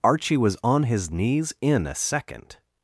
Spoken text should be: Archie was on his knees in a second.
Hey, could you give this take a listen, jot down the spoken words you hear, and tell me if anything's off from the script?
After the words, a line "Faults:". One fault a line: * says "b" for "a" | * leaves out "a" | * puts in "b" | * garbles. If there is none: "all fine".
Archie was on his knees in a second.
Faults:
all fine